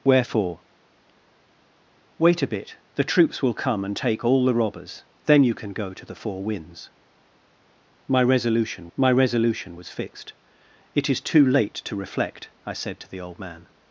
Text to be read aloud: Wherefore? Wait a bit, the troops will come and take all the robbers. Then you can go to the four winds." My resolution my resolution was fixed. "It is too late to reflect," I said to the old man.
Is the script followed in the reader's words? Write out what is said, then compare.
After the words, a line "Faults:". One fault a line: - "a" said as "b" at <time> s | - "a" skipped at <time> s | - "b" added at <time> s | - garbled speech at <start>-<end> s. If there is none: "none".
Wherefore? Wait a bit, the troops will come and take all the robbers. Then you can go to the four winds." My resolution my resolution was fixed. "It is too late to reflect," I said to the old man.
Faults:
none